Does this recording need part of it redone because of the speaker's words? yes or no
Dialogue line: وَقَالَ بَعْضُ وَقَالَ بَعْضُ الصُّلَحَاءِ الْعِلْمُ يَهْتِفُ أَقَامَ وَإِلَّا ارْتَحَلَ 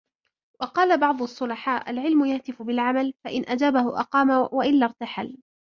yes